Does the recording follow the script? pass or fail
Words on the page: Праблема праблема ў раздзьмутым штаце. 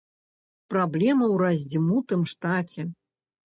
fail